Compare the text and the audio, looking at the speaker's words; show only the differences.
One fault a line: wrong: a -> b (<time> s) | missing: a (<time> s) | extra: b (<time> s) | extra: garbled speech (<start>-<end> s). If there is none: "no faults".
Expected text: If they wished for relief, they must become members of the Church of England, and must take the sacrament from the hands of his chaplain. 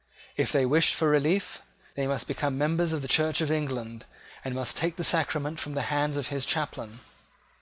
no faults